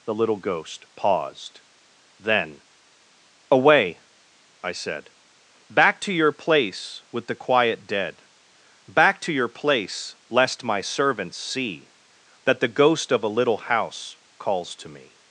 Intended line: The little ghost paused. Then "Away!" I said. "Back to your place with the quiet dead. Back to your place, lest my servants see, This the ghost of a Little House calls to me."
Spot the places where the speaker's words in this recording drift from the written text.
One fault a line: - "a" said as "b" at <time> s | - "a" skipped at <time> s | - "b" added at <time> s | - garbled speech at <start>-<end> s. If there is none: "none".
- "This" said as "That" at 12.4 s